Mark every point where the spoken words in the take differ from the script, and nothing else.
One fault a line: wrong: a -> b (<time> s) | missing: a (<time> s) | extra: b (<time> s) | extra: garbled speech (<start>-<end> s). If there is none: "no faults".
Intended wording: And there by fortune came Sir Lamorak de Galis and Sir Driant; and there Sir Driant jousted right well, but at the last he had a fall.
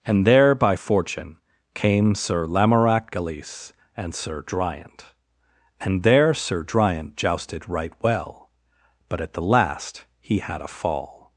missing: de (3.1 s)